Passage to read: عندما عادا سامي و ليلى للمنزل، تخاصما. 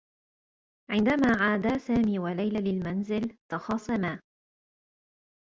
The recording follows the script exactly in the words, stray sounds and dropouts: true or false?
true